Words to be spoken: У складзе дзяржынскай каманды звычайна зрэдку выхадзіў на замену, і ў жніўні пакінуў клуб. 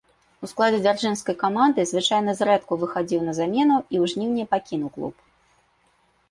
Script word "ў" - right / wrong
right